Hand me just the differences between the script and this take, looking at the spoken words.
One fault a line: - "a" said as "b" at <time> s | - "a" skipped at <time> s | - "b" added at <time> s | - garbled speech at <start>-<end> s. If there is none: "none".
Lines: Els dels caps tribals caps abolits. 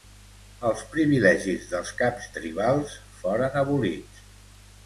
- "privilegis" added at 0.9 s
- "caps" said as "foren" at 3.2 s